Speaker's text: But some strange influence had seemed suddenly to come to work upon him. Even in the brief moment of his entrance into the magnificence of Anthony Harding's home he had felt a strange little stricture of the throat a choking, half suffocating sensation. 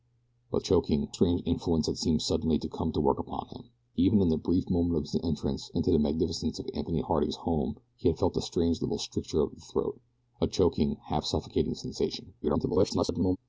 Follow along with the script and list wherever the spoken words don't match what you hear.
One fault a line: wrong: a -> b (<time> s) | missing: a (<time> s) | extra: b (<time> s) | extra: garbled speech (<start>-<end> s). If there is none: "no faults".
wrong: some -> choking (0.6 s)
extra: garbled speech (12.4-13.4 s)